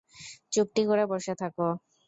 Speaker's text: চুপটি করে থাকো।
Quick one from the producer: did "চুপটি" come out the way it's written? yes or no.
yes